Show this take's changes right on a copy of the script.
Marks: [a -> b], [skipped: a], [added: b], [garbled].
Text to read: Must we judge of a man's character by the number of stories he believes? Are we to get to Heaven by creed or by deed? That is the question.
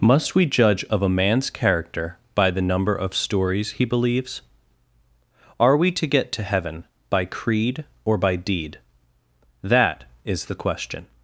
Must we judge of a man's character by the number of stories he believes? Are we to get to Heaven by creed or by deed? That is the question.